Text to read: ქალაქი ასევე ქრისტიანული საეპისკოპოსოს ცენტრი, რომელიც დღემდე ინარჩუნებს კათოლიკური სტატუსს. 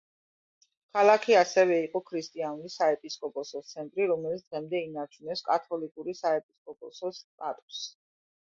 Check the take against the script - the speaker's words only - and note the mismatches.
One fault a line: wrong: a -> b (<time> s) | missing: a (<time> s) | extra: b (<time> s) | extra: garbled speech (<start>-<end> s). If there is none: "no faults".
extra: იყო (1.9 s)
extra: საეპისკოპოსოს (6.2 s)